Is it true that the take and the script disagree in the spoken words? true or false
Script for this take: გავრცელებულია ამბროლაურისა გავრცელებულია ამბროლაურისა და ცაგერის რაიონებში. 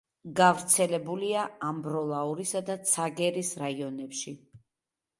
true